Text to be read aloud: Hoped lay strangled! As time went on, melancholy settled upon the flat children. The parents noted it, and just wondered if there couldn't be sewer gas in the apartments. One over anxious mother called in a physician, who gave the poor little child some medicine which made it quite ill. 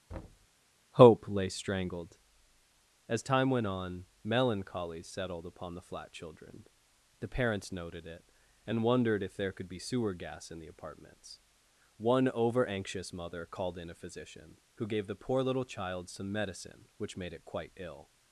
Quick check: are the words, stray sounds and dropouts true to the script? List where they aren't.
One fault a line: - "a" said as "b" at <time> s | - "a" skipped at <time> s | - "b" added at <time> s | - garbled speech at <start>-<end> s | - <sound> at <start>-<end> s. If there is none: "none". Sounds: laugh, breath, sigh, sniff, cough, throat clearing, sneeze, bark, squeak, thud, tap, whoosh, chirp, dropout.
- thud at 0.1-0.5 s
- "Hoped" said as "Hope" at 1.0 s
- "just" skipped at 8.8 s
- "couldn't" said as "could" at 9.5 s